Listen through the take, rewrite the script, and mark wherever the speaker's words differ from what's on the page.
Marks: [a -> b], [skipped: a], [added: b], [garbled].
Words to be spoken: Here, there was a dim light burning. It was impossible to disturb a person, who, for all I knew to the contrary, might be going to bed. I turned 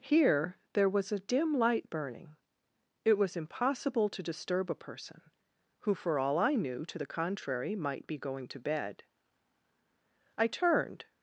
Here, there was a dim light burning. It was impossible to disturb a person, who, for all I knew to the contrary, might be going to bed. I turned